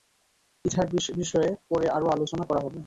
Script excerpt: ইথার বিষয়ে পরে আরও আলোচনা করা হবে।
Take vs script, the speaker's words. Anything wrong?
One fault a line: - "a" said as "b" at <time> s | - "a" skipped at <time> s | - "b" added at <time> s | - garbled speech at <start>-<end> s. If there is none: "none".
none